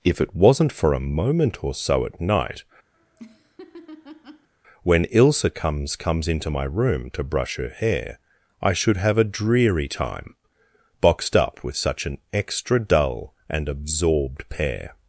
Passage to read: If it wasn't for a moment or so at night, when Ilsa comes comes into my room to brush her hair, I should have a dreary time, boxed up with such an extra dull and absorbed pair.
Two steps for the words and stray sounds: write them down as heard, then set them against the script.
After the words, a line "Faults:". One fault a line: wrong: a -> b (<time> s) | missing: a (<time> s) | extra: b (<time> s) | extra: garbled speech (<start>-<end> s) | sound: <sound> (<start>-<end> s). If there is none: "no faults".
If it wasn't for a moment or so at night, when Ilsa comes comes into my room to brush her hair, I should have a dreary time, boxed up with such an extra dull and absorbed pair.
Faults:
sound: laugh (2.9-4.5 s)